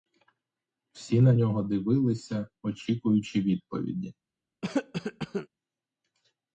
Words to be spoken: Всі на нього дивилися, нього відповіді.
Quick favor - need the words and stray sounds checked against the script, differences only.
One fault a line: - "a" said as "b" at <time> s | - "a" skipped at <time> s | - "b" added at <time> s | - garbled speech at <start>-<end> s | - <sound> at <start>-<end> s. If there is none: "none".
- "нього" said as "очікуючи" at 2.6 s
- cough at 4.6-5.5 s